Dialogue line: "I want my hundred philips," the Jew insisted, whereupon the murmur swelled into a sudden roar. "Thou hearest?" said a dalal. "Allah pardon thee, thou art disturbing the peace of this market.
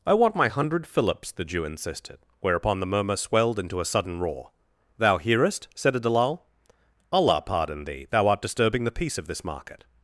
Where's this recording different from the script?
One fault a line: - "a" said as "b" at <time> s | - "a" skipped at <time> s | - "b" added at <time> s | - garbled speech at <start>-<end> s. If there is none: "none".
none